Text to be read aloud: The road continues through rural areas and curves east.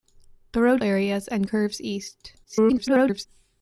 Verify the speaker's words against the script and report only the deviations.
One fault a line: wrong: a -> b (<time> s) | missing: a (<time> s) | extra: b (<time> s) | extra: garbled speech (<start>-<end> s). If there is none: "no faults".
missing: continues through rural (0.8 s)
extra: garbled speech (2.4-3.3 s)